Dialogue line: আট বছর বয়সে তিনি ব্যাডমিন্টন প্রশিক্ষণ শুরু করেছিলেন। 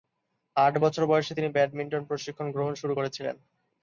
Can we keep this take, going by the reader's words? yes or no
no